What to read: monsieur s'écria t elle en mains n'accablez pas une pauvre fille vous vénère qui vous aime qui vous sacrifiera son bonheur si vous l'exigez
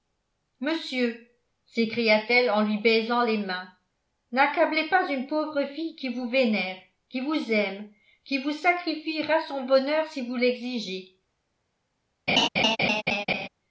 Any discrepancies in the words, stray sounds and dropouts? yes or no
yes